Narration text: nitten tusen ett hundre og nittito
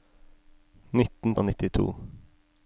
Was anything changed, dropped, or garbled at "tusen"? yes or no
yes